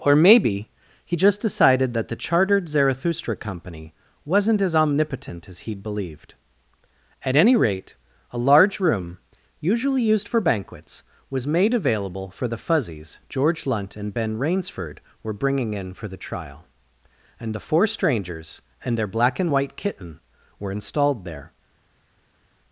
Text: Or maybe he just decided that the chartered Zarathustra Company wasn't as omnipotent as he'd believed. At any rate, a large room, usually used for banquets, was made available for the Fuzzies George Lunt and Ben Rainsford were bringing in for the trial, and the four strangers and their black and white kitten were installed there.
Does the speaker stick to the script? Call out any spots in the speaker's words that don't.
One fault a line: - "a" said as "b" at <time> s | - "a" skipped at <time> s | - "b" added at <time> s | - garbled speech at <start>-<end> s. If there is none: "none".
none